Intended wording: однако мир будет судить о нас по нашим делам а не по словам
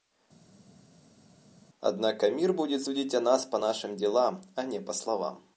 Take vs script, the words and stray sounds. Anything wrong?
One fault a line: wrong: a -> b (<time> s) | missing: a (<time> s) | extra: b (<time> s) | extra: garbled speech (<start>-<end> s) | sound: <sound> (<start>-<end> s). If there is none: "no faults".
no faults